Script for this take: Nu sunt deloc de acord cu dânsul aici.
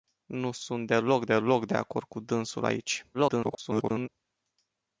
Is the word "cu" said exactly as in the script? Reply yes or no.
yes